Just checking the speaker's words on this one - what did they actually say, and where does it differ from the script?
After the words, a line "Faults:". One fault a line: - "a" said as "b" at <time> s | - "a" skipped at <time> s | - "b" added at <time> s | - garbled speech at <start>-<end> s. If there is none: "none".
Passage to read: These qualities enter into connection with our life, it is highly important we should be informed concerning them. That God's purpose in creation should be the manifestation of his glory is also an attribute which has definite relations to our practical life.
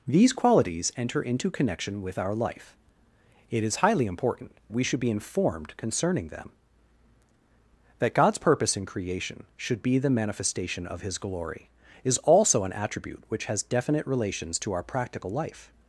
These qualities enter into connection with our life, it is highly important we should be informed concerning them. That God's purpose in creation should be the manifestation of his glory is also an attribute which has definite relations to our practical life.
Faults:
none